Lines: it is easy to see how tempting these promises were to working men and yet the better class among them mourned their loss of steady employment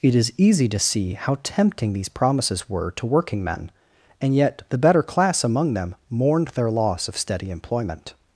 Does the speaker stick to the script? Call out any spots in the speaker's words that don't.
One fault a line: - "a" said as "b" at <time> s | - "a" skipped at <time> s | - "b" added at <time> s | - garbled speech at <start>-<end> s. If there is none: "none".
none